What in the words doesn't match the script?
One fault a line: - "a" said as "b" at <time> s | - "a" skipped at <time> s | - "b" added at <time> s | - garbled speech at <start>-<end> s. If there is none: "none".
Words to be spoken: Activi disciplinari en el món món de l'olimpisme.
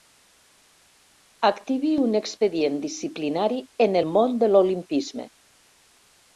- "un expedient" added at 2.1 s
- "món" skipped at 4.4 s